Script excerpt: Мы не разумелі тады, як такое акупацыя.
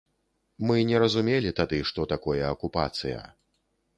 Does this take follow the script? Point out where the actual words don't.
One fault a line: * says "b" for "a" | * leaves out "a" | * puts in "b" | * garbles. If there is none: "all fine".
* says "што" for "як"